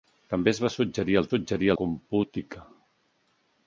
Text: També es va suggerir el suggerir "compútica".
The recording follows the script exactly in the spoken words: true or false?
true